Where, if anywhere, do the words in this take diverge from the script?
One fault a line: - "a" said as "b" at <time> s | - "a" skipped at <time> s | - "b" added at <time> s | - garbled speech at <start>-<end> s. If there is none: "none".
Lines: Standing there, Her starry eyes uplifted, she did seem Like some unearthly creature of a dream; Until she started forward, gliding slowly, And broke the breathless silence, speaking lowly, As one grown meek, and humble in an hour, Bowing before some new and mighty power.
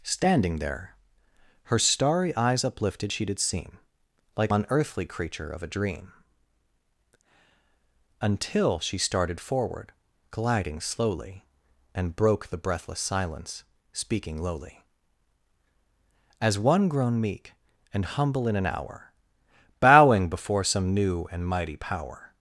- "some" skipped at 4.5 s